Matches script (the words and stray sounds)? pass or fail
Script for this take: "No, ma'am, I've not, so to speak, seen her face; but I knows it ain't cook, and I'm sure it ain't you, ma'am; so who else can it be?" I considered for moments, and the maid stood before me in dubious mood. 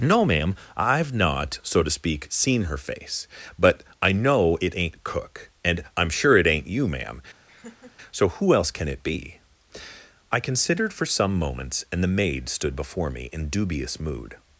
fail